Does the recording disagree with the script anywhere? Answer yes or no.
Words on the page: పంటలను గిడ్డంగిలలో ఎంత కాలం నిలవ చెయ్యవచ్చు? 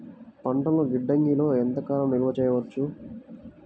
no